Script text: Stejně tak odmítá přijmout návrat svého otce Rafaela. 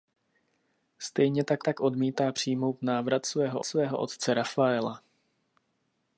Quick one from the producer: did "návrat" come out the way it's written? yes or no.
yes